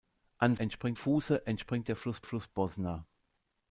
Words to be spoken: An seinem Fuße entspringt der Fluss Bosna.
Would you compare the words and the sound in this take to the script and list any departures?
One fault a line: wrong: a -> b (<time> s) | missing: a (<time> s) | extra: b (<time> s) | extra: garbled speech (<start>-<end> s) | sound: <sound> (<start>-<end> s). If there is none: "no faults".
wrong: seinem -> entspringt (0.6 s)
extra: Fluss (2.2 s)